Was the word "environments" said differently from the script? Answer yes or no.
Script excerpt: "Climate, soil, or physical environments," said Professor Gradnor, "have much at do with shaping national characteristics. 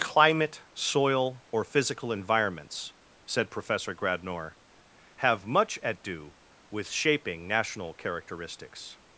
no